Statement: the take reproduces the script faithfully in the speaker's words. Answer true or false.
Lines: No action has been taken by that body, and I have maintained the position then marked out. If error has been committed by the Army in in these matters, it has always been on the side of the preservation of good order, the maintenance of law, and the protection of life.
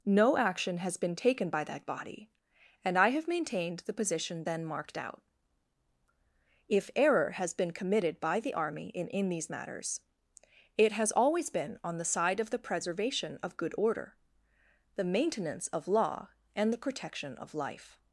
true